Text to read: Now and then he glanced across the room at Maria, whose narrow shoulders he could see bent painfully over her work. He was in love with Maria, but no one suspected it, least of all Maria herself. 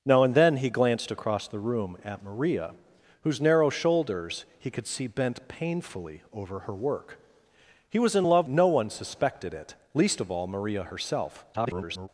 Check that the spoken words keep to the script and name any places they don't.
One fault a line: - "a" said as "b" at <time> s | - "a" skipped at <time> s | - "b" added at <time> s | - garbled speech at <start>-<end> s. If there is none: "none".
- "with Maria but" skipped at 8.5 s
- garbled speech at 11.5-12.1 s